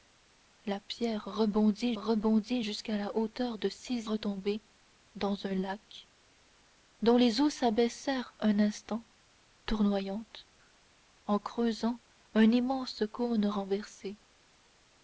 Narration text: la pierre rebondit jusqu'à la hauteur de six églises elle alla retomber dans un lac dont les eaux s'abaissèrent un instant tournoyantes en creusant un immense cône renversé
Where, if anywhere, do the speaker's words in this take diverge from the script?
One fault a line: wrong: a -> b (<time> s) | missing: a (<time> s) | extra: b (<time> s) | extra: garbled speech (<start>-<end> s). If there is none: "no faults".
extra: rebondit (1.9 s)
missing: églises elle alla (4.1 s)